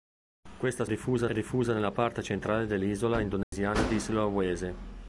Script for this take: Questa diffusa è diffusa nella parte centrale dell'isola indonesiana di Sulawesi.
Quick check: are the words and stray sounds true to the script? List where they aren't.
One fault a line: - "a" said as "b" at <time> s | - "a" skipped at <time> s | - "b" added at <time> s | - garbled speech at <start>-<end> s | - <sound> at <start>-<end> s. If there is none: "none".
- dropout at 3.4-3.5 s